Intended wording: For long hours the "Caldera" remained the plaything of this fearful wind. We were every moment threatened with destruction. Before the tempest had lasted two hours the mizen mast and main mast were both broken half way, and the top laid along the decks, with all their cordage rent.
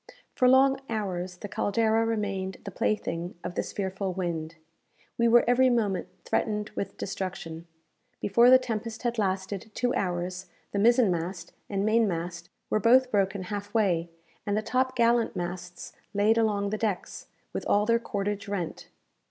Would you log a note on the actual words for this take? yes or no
yes